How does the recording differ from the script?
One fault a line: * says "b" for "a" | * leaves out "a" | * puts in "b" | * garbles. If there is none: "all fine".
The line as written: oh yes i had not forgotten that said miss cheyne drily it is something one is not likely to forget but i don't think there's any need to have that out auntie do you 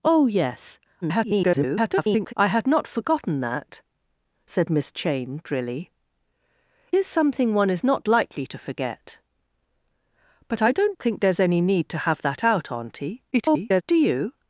* garbles
* leaves out "it"
* garbles